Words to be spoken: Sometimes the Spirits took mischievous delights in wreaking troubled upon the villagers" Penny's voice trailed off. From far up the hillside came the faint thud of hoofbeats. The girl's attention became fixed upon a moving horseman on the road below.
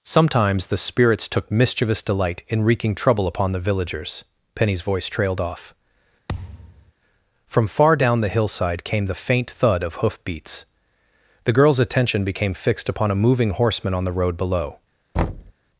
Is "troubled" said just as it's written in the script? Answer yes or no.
no